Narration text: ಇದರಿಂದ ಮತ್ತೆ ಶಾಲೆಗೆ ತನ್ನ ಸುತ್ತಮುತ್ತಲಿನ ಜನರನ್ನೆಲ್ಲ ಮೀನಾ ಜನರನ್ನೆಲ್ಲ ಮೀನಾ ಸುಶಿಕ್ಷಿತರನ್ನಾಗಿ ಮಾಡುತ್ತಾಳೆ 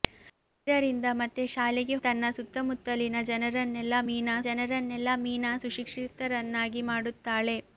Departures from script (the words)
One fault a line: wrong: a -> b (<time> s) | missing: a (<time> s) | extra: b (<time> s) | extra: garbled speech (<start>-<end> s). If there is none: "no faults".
no faults